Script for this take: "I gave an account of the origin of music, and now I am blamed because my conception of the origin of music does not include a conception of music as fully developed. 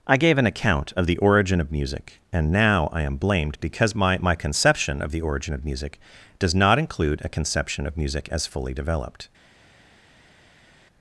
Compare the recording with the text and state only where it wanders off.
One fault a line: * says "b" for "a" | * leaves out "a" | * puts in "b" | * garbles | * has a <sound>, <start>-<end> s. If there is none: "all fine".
* puts in "my"